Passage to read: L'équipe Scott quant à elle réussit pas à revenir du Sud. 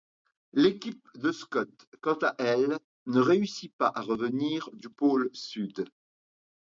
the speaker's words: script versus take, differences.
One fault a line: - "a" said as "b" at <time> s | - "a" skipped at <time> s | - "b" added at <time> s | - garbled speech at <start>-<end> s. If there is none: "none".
- "de" added at 1.1 s
- "ne" added at 3.0 s
- "pôle" added at 4.9 s